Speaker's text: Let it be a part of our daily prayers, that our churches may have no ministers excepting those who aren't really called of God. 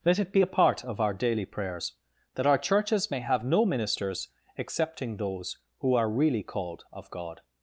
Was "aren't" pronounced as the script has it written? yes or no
no